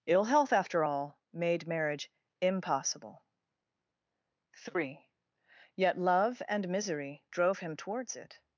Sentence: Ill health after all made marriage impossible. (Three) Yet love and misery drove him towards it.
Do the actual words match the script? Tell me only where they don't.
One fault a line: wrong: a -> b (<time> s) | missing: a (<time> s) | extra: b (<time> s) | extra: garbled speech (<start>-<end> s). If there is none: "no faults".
no faults